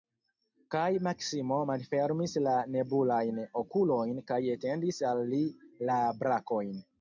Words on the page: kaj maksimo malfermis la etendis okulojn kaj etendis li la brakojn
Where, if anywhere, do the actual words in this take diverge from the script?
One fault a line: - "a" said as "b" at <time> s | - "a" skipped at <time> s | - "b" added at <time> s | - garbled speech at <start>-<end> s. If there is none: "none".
- "etendis" said as "nebulajn" at 2.8 s
- "al" added at 5.1 s